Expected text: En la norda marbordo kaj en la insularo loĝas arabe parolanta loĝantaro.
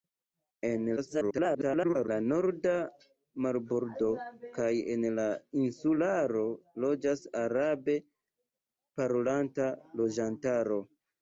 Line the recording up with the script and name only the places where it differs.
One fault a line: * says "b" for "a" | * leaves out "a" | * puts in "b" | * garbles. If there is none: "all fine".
* garbles